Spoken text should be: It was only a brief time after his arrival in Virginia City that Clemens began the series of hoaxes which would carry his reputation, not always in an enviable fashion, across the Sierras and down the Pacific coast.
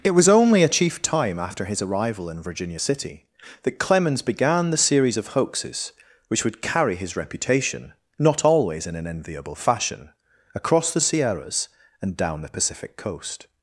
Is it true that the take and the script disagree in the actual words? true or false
true